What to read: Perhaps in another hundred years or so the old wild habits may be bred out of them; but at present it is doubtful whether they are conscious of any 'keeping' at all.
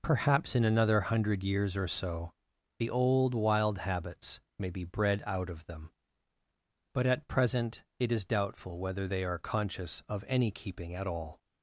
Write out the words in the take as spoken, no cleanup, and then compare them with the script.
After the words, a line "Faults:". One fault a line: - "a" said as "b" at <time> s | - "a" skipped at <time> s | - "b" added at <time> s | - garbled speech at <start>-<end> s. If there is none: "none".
Perhaps in another hundred years or so the old wild habits may be bred out of them; but at present it is doubtful whether they are conscious of any 'keeping' at all.
Faults:
none